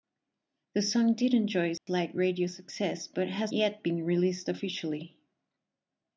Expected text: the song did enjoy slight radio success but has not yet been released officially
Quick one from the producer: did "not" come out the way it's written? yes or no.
no